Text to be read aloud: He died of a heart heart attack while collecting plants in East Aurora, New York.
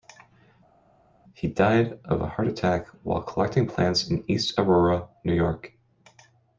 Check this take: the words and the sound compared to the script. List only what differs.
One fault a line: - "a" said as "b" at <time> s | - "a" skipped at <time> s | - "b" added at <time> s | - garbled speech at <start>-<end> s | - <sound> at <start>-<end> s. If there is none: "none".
- "heart" skipped at 2.5 s